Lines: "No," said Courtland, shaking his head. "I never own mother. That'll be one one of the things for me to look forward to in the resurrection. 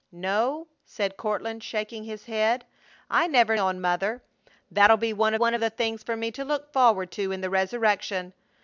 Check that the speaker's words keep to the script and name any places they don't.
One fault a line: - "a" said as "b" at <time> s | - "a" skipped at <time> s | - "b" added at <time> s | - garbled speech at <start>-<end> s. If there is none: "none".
none